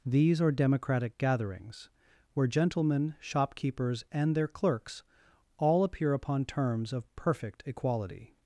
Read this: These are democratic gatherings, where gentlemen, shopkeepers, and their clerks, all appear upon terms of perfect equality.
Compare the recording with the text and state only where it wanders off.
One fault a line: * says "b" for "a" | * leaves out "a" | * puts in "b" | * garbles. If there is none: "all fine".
all fine